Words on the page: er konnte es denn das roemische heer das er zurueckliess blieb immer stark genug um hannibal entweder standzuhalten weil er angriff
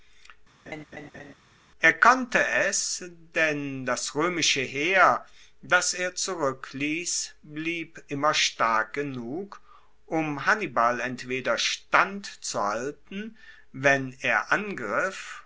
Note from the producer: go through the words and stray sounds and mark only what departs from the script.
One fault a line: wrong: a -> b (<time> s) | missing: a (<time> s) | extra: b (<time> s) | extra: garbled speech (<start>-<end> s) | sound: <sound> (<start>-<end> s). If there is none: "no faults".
sound: laugh (0.7-1.3 s)
wrong: weil -> wenn (13.7 s)